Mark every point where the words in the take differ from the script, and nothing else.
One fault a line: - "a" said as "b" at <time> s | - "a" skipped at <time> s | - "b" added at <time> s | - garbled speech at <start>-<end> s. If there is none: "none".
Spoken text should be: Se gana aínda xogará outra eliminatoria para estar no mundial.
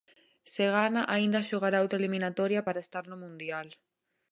none